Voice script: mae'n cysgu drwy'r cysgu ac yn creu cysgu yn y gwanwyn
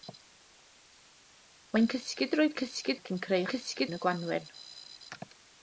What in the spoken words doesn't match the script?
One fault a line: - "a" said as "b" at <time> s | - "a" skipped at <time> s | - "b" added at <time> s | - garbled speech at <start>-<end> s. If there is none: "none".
none